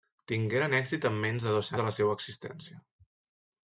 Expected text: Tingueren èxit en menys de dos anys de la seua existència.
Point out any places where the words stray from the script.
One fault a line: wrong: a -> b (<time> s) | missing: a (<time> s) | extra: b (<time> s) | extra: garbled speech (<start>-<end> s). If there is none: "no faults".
missing: anys (1.7 s)